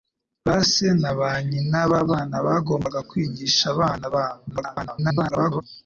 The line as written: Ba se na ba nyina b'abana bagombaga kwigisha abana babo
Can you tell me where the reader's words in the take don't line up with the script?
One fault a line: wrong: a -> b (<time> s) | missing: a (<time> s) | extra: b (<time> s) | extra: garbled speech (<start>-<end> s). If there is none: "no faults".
extra: garbled speech (4.5-5.6 s)